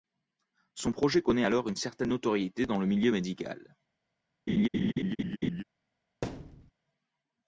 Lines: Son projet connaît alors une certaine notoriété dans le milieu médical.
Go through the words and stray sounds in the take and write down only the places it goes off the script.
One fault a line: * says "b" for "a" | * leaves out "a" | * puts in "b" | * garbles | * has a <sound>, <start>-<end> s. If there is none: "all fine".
* has a laugh, 4.5-5.6 s
* has a thud, 6.2-6.7 s